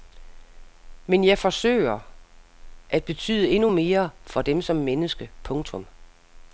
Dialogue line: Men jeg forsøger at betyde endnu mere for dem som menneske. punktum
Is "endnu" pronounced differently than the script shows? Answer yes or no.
no